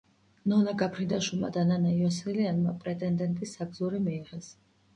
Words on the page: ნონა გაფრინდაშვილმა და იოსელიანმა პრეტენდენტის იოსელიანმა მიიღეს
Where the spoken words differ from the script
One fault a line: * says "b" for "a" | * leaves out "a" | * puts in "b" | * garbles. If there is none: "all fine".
* puts in "ნანა"
* says "საგზური" for "იოსელიანმა"